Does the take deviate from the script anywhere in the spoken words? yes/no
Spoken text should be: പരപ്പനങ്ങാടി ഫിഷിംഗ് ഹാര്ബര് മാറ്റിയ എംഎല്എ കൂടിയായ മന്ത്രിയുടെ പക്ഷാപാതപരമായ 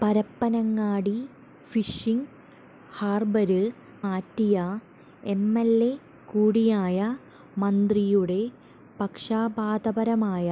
no